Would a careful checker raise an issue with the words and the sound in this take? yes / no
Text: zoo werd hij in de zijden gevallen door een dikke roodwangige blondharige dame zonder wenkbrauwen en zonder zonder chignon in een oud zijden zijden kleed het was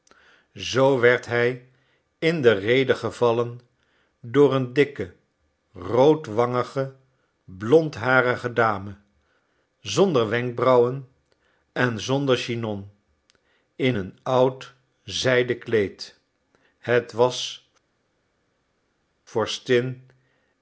yes